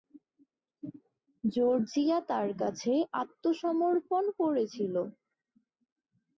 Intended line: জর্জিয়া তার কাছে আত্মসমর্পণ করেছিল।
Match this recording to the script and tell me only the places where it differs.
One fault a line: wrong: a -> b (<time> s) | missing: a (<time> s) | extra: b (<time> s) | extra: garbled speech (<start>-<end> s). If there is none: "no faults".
no faults